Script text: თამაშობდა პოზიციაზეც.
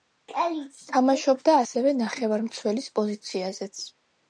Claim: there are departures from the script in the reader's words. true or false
true